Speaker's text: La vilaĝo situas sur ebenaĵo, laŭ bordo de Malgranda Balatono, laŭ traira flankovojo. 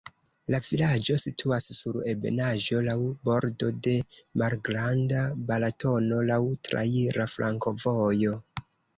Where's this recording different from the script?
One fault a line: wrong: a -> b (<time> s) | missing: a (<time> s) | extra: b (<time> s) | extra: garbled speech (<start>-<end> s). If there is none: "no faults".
no faults